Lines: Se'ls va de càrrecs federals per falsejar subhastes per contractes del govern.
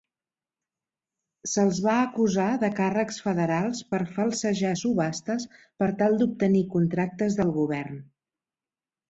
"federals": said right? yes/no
yes